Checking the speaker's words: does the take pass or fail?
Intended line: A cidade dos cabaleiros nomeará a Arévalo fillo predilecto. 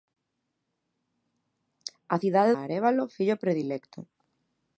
fail